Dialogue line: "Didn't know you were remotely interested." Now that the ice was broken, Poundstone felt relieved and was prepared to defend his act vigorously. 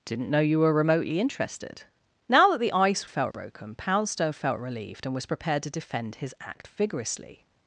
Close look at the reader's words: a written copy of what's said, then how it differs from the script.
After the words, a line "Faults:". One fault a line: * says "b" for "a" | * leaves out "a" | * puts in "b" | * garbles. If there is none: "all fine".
"Didn't know you were remotely interested." Now that the ice felt broken, Poundstone felt relieved and was prepared to defend his act vigorously.
Faults:
* says "felt" for "was"